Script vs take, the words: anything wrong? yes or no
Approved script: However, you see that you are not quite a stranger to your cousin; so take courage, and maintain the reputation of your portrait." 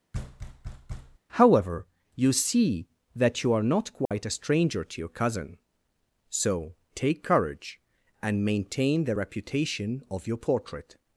no